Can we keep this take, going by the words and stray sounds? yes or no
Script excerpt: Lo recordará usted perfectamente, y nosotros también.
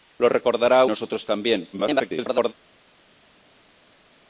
no